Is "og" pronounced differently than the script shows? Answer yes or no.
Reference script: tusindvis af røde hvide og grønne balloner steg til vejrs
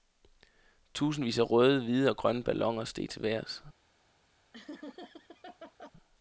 no